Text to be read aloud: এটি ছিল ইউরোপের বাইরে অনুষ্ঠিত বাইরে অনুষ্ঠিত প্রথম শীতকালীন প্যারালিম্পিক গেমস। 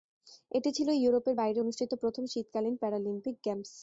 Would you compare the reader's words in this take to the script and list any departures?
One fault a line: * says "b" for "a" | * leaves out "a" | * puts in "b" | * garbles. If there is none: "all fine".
* leaves out "বাইরে অনুষ্ঠিত"